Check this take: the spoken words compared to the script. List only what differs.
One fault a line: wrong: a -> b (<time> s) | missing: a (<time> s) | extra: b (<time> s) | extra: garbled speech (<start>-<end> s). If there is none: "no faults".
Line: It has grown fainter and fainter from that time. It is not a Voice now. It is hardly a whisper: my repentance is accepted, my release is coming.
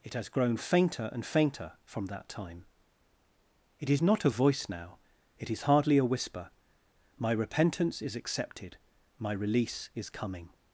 no faults